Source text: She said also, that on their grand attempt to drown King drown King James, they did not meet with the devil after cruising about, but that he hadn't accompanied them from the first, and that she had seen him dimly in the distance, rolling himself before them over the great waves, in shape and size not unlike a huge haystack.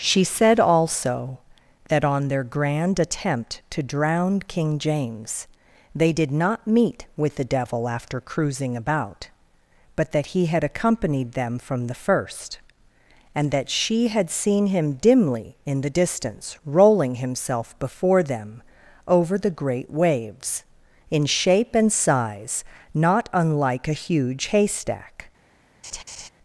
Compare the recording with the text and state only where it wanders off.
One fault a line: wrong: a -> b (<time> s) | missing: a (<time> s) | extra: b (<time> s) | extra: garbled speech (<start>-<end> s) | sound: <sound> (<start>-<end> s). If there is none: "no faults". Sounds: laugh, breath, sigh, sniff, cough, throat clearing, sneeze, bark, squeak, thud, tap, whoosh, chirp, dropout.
missing: drown King (4.8 s)
wrong: hadn't -> had (10.5 s)
sound: laugh (25.8-26.3 s)